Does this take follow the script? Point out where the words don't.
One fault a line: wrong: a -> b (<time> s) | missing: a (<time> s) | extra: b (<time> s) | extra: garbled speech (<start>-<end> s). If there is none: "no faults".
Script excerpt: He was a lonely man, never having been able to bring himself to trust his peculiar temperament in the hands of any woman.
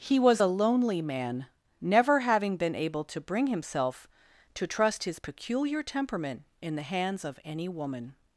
no faults